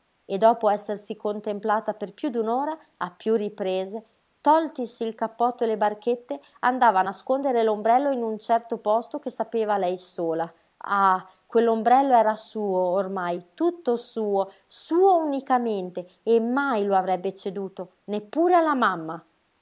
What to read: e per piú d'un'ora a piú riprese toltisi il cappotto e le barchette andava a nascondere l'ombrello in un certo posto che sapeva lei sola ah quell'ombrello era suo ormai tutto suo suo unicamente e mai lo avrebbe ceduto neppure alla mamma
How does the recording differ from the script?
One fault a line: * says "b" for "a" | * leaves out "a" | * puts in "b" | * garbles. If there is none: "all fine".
* puts in "dopo essersi contemplata"